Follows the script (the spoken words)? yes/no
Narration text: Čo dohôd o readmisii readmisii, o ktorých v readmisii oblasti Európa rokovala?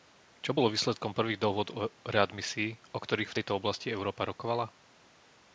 no